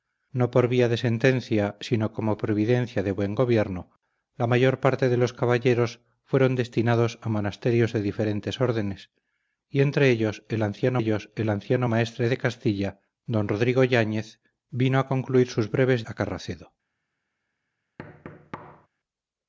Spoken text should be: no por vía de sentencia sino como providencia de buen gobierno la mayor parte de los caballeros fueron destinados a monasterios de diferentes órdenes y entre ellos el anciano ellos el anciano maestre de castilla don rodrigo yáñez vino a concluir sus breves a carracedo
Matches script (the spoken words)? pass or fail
pass